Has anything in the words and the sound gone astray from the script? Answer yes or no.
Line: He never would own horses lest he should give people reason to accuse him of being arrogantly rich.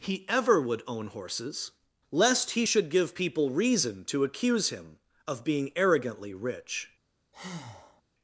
yes